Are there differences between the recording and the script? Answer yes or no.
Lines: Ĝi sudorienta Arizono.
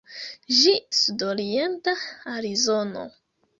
no